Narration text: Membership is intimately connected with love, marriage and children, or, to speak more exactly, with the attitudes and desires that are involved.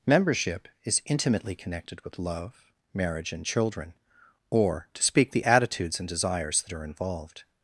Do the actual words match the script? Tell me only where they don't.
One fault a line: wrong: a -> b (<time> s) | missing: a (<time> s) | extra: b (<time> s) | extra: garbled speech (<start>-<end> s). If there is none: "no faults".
missing: more exactly with (5.3 s)